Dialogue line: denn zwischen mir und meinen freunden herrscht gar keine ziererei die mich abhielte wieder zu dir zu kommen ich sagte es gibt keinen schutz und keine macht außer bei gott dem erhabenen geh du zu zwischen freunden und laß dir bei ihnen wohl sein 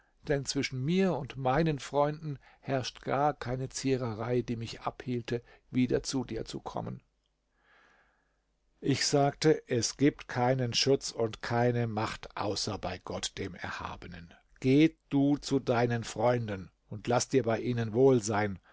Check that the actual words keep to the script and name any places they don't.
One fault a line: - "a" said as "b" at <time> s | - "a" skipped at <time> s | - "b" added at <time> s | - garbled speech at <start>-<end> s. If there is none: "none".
- "zwischen" said as "deinen" at 15.6 s